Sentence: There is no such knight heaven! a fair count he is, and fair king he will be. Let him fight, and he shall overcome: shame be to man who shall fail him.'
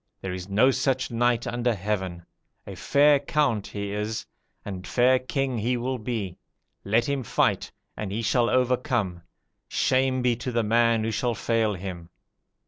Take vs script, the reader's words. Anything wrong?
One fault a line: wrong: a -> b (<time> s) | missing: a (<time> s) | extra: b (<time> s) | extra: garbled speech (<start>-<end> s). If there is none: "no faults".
extra: under (1.4 s)
extra: the (10.5 s)